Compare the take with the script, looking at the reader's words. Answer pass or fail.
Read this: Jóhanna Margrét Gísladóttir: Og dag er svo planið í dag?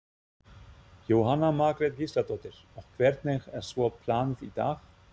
fail